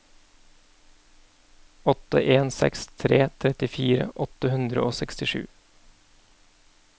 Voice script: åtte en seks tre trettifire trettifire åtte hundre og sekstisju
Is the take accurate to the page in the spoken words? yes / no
no